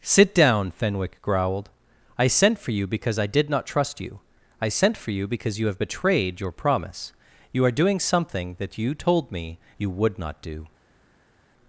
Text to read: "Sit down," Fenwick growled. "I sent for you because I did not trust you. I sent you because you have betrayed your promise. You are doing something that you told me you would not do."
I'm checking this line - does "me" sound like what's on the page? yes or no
yes